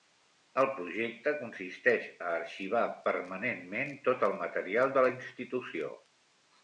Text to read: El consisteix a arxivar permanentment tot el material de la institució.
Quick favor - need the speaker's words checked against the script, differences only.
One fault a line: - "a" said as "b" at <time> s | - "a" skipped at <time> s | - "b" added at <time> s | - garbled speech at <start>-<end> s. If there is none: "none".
- "projecte" added at 0.8 s